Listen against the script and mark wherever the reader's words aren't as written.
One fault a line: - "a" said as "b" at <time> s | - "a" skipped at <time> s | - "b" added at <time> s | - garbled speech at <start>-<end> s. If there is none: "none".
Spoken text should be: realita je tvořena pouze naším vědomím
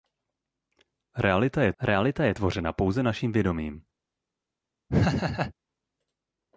- "realita je" added at 1.8 s